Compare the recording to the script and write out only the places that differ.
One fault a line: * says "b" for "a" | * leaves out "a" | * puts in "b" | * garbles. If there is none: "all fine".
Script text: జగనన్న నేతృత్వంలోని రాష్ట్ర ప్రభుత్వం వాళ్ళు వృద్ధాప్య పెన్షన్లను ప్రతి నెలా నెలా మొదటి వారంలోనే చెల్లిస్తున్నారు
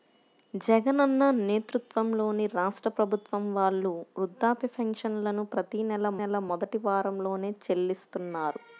all fine